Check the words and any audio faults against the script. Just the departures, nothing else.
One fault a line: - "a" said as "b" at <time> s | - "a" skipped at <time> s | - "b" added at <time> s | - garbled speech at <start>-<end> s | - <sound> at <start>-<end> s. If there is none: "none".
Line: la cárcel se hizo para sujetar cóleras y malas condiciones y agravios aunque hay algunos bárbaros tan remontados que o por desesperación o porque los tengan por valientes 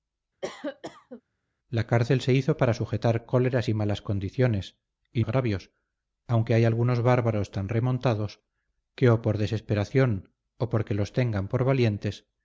- cough at 0.4-1.2 s